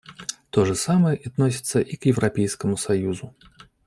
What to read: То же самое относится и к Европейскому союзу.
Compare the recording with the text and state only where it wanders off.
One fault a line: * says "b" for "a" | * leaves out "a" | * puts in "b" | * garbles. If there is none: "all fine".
all fine